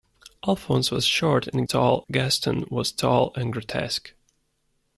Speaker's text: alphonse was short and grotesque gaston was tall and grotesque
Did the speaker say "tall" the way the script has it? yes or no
yes